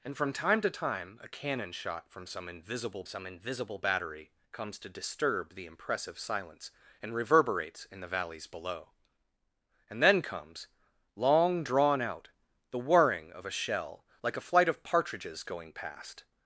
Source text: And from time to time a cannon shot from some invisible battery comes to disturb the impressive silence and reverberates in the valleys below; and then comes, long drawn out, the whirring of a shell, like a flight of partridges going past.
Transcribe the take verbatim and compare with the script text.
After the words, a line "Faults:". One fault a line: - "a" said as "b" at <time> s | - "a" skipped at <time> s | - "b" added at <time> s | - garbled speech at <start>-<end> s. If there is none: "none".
And from time to time a cannon shot from some invisible some invisible battery comes to disturb the impressive silence and reverberates in the valleys below; and then comes, long drawn out, the whirring of a shell, like a flight of partridges going past.
Faults:
- "some invisible" added at 3.0 s